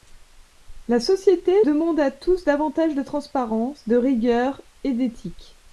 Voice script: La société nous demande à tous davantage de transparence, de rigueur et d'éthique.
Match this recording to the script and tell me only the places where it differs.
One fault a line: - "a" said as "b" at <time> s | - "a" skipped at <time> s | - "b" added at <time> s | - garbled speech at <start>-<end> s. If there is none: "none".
- "nous" skipped at 1.5 s